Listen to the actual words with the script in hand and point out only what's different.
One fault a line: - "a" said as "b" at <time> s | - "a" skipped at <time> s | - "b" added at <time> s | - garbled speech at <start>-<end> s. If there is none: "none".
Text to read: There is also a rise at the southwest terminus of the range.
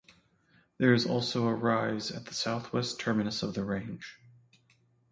none